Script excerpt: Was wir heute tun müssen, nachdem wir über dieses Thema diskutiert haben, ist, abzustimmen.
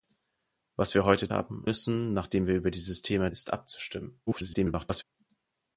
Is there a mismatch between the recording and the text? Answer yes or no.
yes